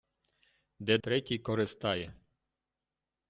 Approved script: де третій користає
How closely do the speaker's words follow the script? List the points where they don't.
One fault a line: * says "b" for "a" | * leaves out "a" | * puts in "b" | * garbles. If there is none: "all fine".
all fine